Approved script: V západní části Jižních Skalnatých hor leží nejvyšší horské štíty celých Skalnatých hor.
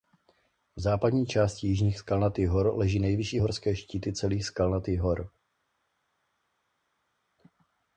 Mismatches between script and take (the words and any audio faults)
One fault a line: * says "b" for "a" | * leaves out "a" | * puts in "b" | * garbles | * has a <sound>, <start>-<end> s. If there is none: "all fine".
all fine